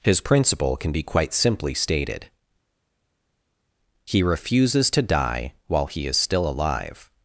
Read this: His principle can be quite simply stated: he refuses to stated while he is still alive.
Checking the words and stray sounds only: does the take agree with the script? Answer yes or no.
no